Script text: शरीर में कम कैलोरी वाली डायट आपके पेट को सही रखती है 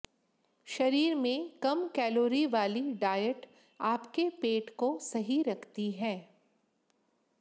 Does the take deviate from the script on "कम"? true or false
false